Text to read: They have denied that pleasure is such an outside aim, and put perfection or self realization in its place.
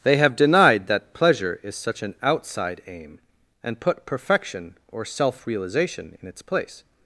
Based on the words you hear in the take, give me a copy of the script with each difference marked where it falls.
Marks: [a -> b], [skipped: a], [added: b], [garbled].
They have denied that pleasure is such an outside aim, and put perfection or self realization in its place.